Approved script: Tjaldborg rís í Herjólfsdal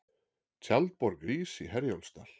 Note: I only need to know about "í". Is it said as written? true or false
true